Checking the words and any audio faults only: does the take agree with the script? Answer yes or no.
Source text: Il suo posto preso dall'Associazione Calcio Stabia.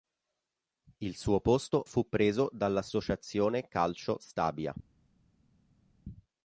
no